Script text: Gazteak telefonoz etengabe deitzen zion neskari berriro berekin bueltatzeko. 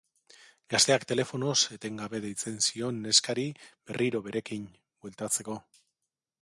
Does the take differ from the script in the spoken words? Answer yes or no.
no